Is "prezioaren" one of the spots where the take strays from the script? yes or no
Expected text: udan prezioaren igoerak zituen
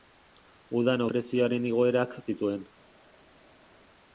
no